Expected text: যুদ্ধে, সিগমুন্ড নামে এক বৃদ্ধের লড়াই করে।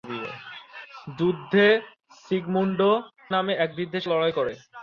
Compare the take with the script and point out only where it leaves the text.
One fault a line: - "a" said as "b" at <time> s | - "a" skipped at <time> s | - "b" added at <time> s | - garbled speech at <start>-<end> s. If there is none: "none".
none